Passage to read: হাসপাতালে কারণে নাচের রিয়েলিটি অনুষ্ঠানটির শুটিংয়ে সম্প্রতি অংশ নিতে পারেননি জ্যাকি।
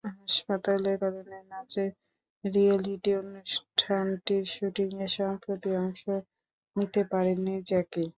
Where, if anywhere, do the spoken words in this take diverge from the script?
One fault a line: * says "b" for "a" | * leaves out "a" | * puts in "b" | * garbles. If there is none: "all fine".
all fine